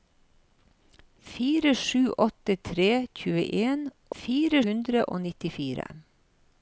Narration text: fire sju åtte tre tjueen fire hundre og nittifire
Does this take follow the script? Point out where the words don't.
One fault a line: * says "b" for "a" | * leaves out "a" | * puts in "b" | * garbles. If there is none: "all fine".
all fine